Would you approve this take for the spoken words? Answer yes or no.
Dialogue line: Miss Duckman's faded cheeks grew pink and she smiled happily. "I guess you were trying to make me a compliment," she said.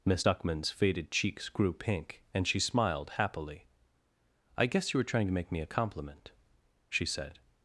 yes